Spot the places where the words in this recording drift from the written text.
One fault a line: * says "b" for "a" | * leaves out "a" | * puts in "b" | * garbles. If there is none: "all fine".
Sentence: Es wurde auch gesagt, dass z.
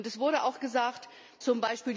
* leaves out "dass"